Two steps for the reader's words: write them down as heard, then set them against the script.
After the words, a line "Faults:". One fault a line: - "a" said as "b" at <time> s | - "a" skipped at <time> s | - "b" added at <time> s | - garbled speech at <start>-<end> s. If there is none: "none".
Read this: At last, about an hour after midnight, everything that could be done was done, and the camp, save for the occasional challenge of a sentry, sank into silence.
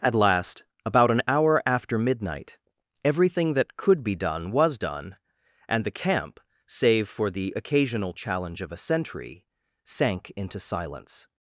At last, about an hour after midnight, everything that could be done was done, and the camp, save for the occasional challenge of a sentry, sank into silence.
Faults:
none